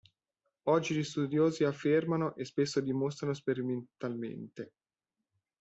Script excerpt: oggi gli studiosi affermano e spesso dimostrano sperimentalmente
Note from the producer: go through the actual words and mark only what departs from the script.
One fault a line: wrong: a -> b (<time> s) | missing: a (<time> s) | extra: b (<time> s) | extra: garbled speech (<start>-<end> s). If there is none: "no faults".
no faults